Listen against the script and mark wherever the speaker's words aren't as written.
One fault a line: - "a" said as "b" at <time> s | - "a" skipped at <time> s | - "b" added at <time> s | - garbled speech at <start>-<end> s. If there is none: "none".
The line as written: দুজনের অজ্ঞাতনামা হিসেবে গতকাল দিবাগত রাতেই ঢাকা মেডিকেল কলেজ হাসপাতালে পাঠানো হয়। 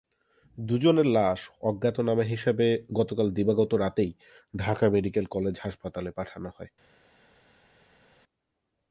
- "লাশ" added at 1.1 s